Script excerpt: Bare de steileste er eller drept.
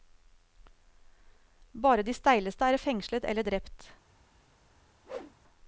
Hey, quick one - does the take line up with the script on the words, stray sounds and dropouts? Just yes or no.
no